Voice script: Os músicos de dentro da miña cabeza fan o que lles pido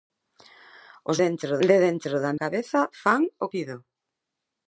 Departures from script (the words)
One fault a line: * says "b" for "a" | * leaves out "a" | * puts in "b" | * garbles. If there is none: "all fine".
* says "dentro" for "músicos"
* leaves out "miña"
* leaves out "que lles"